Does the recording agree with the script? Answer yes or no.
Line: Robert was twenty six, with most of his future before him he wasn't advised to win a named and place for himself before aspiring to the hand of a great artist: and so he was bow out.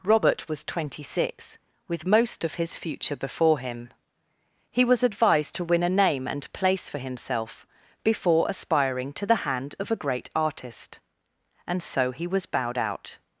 no